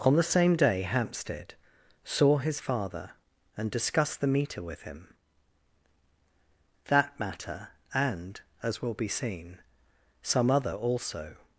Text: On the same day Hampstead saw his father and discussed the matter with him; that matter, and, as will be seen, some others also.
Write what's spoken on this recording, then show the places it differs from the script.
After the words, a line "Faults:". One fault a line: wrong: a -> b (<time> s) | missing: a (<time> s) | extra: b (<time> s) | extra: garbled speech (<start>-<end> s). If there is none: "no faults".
On the same day Hampstead saw his father and discussed the meter with him; that matter, and, as will be seen, some other also.
Faults:
wrong: matter -> meter (4.2 s)
wrong: others -> other (10.5 s)